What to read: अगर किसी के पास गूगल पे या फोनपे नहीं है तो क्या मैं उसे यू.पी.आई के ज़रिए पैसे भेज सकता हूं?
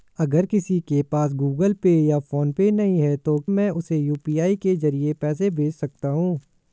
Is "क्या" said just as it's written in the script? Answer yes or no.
no